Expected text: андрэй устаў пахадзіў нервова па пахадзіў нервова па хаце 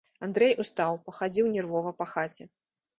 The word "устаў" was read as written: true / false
true